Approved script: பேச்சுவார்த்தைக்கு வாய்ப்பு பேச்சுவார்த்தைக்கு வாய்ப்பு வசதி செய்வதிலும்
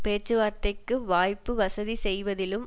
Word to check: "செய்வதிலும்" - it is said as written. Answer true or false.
true